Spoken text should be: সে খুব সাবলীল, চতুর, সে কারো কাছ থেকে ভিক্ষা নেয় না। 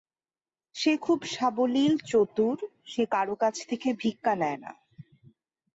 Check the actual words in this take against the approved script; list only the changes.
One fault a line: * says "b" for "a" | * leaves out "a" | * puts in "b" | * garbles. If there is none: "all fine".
all fine